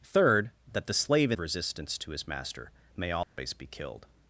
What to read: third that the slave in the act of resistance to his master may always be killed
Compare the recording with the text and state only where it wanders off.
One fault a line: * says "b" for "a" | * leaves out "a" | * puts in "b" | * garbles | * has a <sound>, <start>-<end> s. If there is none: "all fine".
* leaves out "the act"
* has a dropout, 3.2-3.4 s